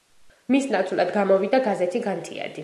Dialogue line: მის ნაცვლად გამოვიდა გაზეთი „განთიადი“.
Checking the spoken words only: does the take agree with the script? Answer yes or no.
yes